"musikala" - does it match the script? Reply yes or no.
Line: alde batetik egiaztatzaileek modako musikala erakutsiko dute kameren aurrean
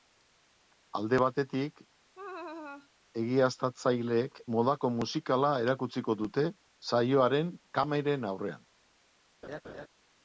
yes